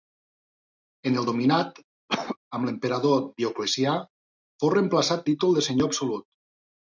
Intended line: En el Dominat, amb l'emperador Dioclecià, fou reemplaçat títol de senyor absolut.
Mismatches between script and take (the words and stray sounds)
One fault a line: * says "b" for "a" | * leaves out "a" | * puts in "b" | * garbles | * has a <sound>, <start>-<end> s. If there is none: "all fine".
* has a cough, 2.1-2.4 s